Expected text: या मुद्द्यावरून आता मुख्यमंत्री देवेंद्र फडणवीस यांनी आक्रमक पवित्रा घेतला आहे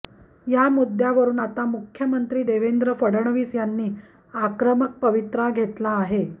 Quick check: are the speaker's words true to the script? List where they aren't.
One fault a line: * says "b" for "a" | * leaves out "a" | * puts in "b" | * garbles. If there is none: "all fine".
all fine